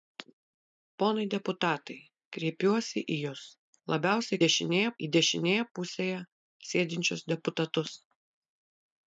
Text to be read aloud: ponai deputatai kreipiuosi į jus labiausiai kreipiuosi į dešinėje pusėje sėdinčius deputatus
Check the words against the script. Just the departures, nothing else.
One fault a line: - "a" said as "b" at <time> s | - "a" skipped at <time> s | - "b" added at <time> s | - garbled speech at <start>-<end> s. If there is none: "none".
- "kreipiuosi" said as "dešinėje" at 4.5 s